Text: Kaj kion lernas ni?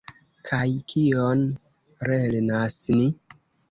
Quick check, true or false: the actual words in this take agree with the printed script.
true